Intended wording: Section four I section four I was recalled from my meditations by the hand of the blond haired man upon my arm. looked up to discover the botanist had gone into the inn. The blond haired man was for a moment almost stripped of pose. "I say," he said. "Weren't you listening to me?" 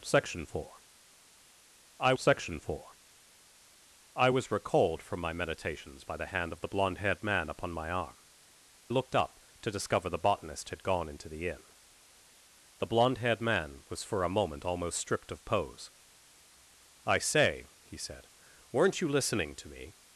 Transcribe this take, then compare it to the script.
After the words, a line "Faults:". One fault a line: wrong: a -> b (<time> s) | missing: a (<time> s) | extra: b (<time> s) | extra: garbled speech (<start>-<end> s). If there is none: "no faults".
Section four I section four I was recalled from my meditations by the hand of the blond haired man upon my arm. looked up to discover the botanist had gone into the inn. The blond haired man was for a moment almost stripped of pose. "I say," he said. "Weren't you listening to me?"
Faults:
no faults